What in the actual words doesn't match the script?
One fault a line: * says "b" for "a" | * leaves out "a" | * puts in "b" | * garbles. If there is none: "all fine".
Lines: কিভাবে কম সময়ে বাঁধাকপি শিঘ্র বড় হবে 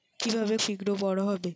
* leaves out "কম সময়ে বাঁধাকপি"